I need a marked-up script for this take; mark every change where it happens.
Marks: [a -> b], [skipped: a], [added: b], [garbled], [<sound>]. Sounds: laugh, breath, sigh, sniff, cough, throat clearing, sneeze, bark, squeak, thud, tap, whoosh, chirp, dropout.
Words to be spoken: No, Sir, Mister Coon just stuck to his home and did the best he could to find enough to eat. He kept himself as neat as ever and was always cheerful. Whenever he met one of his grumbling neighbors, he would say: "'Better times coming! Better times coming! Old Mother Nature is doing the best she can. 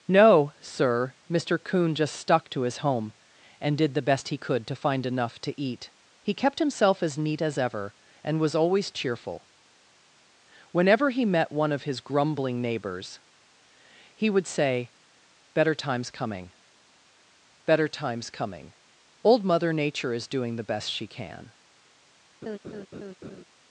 No, Sir, Mister Coon just stuck to his home and did the best he could to find enough to eat. He kept himself as neat as ever and was always cheerful. Whenever he met one of his grumbling neighbors, he would say: "'Better times coming! Better times coming! Old Mother Nature is doing the best she can. [laugh]